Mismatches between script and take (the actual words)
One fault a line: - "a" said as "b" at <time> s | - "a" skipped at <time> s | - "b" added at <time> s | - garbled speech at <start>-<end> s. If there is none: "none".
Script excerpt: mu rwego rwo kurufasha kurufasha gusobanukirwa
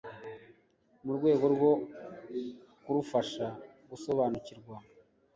- "kurufasha" skipped at 3.5 s